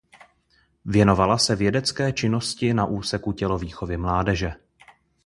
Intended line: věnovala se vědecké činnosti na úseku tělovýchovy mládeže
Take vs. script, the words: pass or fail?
pass